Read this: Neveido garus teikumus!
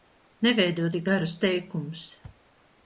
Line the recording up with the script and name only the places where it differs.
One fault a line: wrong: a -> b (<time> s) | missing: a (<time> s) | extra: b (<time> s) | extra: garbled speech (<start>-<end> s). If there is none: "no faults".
extra: tik (0.9 s)